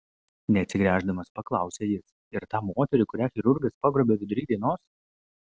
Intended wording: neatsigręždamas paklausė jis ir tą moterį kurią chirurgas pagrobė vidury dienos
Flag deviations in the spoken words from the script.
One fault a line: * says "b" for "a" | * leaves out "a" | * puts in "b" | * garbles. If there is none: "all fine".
all fine